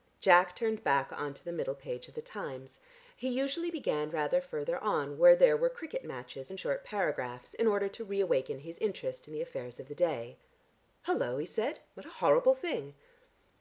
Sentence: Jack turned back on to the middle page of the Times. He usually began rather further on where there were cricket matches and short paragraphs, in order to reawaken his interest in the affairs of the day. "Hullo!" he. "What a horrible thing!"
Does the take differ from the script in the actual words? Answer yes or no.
yes